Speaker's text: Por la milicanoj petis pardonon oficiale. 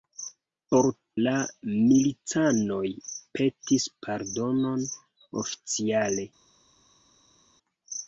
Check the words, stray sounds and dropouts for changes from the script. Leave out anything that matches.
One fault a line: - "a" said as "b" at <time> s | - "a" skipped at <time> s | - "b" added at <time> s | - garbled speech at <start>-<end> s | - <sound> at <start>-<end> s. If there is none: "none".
none